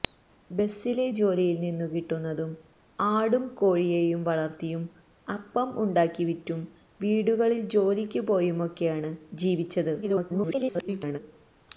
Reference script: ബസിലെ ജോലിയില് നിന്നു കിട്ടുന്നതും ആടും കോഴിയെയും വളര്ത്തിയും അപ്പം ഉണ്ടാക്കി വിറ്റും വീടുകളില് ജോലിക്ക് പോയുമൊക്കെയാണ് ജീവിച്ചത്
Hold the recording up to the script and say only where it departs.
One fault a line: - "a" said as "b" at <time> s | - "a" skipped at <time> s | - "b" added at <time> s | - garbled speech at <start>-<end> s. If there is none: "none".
- garbled speech at 10.0-11.2 s